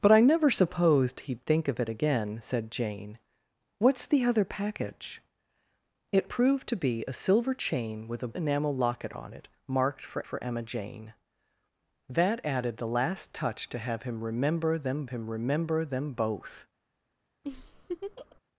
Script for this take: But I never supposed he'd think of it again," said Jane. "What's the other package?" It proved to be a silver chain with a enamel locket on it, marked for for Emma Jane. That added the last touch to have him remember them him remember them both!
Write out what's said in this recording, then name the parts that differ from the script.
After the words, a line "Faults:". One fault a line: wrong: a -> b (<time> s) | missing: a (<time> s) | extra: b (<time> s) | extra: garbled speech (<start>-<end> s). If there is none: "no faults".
But I never supposed he'd think of it again," said Jane. "What's the other package?" It proved to be a silver chain with a enamel locket on it, marked for for Emma Jane. That added the last touch to have him remember them him remember them both!
Faults:
no faults